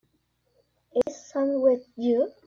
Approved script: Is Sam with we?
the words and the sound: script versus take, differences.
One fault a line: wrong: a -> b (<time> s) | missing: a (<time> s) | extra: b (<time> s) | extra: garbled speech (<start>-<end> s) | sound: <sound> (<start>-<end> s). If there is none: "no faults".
sound: dropout (1.0-1.1 s)
wrong: we -> you (2.0 s)